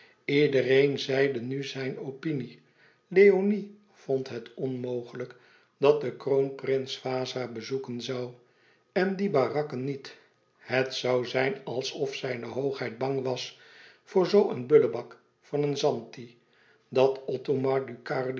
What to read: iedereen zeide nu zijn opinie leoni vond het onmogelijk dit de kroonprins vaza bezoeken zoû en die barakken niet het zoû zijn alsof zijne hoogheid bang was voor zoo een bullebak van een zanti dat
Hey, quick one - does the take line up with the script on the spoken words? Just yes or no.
no